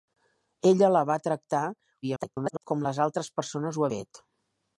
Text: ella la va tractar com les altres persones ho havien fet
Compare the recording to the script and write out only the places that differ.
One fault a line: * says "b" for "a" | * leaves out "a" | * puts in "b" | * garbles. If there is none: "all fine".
* garbles
* leaves out "havien"